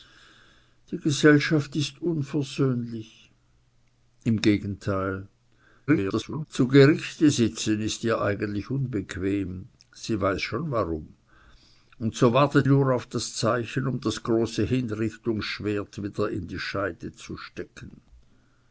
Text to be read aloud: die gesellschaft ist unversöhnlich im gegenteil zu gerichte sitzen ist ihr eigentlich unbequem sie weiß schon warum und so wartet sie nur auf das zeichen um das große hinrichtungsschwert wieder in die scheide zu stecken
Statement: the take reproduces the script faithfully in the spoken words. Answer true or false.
false